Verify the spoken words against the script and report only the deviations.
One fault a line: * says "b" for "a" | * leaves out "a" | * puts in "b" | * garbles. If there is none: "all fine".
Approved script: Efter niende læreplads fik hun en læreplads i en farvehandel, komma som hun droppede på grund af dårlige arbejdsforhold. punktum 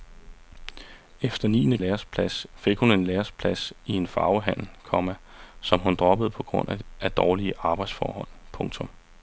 all fine